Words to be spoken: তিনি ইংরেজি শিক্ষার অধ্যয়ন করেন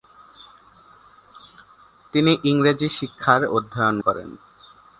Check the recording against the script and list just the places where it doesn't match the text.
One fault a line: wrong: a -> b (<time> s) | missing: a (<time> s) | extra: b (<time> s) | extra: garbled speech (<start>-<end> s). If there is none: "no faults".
no faults